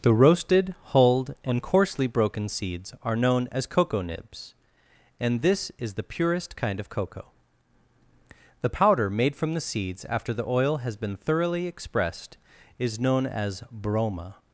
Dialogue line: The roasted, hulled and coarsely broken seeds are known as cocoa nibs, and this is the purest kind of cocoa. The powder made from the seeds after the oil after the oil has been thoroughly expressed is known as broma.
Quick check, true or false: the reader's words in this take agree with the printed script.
false